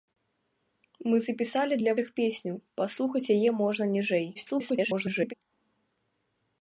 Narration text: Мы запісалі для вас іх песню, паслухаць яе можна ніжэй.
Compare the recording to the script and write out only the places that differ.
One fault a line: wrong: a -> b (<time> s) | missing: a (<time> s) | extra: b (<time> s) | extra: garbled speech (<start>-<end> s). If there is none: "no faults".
missing: вас (1.9 s)
extra: garbled speech (4.3-5.3 s)